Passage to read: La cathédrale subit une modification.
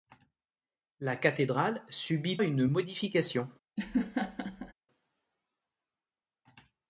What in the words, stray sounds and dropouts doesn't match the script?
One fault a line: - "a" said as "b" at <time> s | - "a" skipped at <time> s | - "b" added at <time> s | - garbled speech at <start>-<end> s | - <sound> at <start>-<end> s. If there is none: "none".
- laugh at 3.8-4.7 s